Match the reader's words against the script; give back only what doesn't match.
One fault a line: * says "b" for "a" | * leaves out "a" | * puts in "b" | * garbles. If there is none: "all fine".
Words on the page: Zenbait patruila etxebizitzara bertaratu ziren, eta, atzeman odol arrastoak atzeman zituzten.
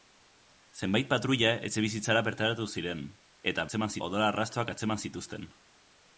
all fine